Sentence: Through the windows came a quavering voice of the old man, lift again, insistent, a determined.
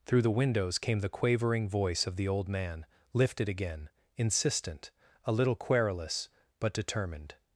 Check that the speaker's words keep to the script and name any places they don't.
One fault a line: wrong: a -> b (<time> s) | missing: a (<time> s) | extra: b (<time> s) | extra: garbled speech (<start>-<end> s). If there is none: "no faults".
wrong: a -> the (1.0 s)
wrong: lift -> lifted (3.1 s)
extra: little querulous but (5.3 s)